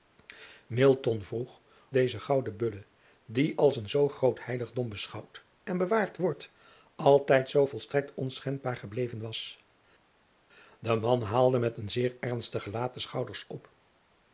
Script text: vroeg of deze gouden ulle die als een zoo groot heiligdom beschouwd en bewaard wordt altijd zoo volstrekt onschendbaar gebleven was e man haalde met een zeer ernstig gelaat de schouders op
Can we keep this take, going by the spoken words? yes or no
no